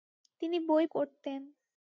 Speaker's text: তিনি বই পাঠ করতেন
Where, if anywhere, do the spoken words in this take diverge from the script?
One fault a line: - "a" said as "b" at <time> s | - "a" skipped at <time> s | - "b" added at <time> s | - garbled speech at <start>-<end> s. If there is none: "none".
- "পাঠ" skipped at 0.8 s